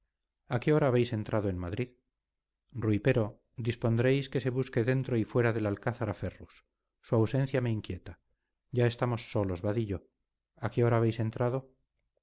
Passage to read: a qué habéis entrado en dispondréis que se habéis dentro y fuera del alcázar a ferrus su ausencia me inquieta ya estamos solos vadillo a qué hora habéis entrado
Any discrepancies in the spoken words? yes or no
yes